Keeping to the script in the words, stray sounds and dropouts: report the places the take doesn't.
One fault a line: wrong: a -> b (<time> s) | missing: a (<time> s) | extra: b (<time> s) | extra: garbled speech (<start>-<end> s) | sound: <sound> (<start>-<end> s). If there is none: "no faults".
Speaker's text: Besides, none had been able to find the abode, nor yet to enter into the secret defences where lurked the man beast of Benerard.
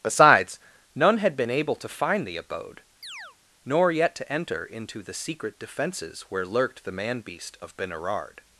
sound: chirp (3.0-3.4 s)